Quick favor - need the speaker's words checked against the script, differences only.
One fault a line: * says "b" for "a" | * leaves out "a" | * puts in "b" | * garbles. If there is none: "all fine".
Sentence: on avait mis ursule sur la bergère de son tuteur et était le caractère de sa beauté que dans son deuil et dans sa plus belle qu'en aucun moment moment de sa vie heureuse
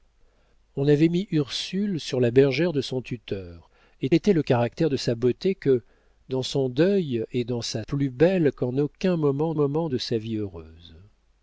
all fine